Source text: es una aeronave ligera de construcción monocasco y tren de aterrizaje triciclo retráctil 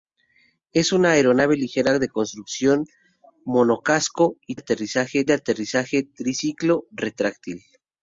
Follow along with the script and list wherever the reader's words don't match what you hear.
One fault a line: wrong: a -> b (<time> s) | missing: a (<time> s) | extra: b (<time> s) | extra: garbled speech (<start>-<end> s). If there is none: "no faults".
wrong: tren -> aterrizaje (4.5 s)